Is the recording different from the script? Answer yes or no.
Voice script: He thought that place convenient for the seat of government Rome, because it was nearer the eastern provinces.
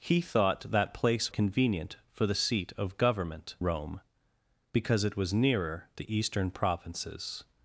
no